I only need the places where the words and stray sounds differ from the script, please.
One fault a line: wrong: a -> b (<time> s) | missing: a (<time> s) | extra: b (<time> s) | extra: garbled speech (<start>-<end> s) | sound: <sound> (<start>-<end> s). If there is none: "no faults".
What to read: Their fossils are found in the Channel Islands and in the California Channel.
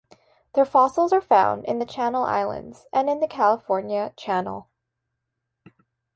no faults